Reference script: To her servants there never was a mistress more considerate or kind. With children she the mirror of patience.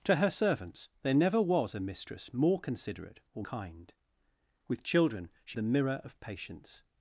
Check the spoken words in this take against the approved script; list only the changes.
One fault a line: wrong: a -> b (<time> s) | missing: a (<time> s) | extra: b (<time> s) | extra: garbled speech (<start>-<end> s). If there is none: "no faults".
no faults